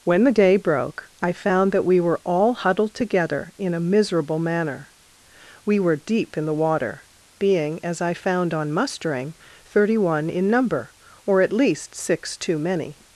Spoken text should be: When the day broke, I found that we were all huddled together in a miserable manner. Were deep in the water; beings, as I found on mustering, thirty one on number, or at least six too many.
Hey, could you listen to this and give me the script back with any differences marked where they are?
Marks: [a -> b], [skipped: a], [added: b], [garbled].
When the day broke, I found that we were all huddled together in a miserable manner. [added: We] Were deep in the water; [beings, -> being] as I found on mustering, thirty one [on -> in] number, or at least six too many.